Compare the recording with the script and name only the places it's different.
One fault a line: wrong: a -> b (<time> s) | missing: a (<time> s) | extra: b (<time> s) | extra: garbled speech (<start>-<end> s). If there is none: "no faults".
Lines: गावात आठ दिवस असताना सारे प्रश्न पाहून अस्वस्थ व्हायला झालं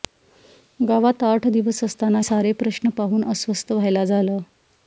no faults